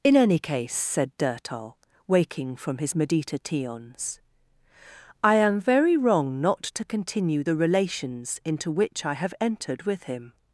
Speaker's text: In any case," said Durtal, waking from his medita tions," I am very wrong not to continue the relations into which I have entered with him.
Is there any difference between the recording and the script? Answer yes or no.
no